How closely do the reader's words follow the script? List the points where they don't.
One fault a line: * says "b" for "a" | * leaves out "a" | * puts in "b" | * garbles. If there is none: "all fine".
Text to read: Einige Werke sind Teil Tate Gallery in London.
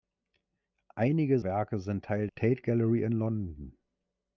all fine